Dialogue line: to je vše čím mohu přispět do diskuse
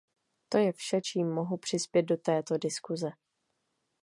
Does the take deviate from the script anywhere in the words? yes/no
yes